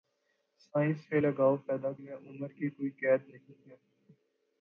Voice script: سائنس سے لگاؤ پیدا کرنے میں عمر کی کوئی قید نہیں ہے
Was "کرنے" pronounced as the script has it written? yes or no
no